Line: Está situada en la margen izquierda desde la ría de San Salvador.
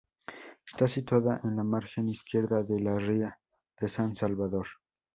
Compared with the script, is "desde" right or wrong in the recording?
wrong